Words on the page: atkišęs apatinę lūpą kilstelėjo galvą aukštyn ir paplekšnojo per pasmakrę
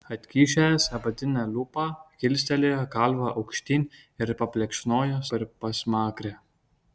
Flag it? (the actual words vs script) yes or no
no